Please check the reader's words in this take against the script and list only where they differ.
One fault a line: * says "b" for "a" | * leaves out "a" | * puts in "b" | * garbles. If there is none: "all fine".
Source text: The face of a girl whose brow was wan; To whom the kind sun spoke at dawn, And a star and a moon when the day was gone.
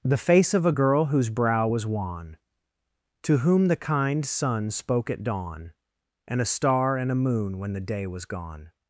all fine